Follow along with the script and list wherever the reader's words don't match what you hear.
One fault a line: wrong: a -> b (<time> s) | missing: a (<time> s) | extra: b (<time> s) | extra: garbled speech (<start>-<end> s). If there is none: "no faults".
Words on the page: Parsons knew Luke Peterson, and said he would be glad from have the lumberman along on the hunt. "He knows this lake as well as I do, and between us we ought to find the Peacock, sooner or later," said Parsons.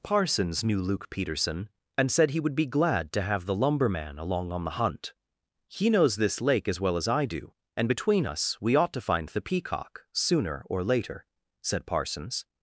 wrong: from -> to (3.1 s)